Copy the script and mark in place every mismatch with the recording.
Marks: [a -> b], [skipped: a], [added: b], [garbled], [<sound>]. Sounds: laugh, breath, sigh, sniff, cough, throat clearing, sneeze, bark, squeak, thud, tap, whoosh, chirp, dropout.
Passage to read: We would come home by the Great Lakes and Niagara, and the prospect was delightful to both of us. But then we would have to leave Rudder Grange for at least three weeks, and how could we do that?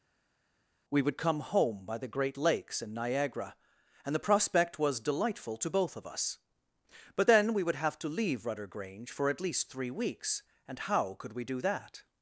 We would come home by the Great Lakes and Niagara, and the prospect was delightful to both of us. But then we would have to leave Rudder Grange for at least three weeks, and how could we do that?